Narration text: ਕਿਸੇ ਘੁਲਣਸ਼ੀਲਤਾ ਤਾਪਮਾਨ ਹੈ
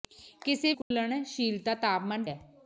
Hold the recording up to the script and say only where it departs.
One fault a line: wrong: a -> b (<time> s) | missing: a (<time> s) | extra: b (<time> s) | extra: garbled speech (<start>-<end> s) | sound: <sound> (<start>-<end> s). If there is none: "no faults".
sound: dropout (0.8-0.9 s)